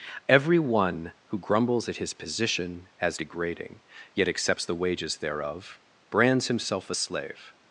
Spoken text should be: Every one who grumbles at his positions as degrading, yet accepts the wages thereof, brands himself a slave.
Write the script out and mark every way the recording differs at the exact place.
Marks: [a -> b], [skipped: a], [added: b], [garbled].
Every one who grumbles at his [positions -> position] as degrading, yet accepts the wages thereof, brands himself a slave.